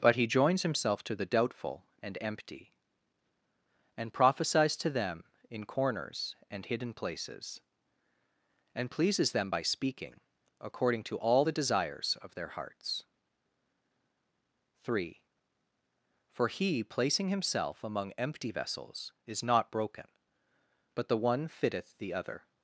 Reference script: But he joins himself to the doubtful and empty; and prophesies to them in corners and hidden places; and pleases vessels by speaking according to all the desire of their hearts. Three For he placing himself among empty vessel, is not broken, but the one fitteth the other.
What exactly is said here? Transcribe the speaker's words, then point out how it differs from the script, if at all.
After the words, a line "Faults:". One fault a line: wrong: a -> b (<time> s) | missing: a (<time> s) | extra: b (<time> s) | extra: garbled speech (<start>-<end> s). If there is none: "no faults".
But he joins himself to the doubtful and empty; and prophesies to them in corners and hidden places; and pleases them by speaking according to all the desires of their hearts. Three For he placing himself among empty vessels, is not broken, but the one fitteth the other.
Faults:
wrong: vessels -> them (9.3 s)
wrong: desire -> desires (11.5 s)
wrong: vessel -> vessels (18.5 s)